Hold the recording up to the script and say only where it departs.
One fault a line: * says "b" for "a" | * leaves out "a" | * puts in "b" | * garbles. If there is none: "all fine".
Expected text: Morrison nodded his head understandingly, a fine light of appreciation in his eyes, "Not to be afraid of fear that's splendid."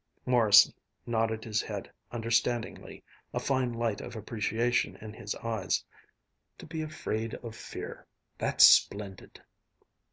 * leaves out "Not"